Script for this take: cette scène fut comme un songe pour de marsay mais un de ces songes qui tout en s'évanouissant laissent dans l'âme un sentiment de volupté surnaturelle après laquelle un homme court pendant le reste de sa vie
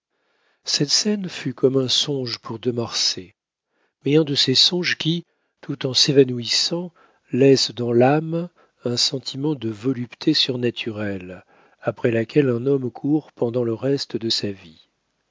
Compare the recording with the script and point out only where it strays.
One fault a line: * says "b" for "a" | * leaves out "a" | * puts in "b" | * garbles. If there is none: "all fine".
all fine